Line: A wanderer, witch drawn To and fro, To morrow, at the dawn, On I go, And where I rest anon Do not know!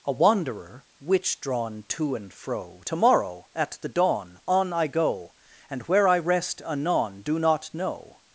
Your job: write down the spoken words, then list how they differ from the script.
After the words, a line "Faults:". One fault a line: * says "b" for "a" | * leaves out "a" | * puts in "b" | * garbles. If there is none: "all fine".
A wanderer, witch drawn To and fro, To morrow, at the dawn, On I go, And where I rest anon Do not know!
Faults:
all fine